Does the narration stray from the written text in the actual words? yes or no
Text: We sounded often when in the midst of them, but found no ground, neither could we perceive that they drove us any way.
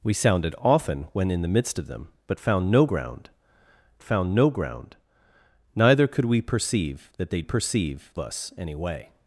yes